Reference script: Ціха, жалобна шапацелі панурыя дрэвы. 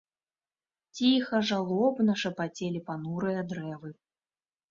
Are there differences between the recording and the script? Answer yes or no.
no